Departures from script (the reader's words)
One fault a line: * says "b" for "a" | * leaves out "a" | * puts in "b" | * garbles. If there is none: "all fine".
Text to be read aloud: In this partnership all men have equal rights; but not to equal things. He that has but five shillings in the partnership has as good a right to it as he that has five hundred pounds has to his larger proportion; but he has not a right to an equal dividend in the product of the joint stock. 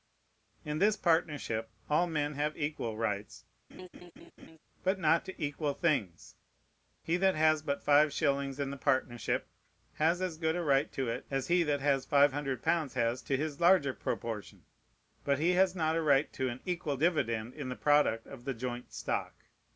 all fine